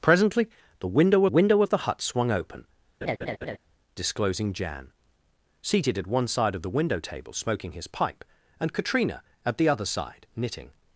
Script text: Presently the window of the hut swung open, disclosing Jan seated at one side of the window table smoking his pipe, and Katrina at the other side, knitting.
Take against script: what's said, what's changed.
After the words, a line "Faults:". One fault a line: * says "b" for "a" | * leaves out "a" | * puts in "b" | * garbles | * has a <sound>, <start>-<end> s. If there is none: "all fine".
Presently the window window of the hut swung open, disclosing Jan seated at one side of the window table smoking his pipe, and Katrina at the other side, knitting.
Faults:
* puts in "window"
* has a laugh, 3.0-3.6 s